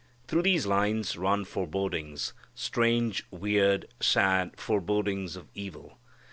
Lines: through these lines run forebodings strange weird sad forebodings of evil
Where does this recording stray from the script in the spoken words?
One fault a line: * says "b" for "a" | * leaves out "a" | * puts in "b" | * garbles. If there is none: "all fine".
all fine